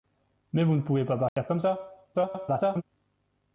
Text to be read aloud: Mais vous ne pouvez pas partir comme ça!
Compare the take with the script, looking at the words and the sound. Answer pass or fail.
fail